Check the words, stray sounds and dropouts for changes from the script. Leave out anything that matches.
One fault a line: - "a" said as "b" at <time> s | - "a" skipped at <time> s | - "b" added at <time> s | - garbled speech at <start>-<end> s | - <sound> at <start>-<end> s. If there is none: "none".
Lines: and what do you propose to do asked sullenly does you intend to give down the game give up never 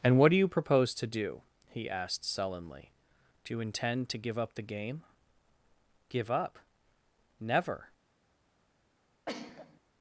- "he" added at 1.7 s
- "does" said as "do" at 3.4 s
- "down" said as "up" at 4.4 s
- sneeze at 9.3-9.8 s